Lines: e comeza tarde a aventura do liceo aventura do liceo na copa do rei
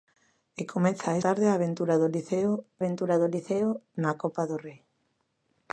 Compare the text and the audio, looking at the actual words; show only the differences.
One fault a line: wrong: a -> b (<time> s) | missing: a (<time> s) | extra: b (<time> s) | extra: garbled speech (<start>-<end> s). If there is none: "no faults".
no faults